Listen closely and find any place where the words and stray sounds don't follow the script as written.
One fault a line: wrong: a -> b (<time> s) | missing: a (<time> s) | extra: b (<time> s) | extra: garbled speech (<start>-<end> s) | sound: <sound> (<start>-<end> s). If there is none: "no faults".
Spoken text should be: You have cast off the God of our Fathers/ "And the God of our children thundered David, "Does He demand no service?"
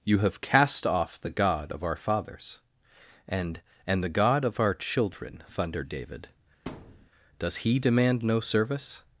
extra: and (3.9 s)
sound: thud (6.7-7.1 s)